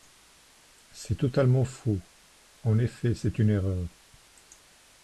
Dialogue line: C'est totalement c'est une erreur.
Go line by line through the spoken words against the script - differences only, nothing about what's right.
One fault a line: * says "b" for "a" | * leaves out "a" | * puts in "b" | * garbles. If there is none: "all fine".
* puts in "faux En effet"